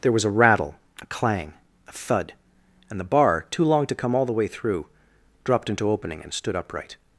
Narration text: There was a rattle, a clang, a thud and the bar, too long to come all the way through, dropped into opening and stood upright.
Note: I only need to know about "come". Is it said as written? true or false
true